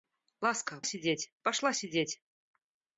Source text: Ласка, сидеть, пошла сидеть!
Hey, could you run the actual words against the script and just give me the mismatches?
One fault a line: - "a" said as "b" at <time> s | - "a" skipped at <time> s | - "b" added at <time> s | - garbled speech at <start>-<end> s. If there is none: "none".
none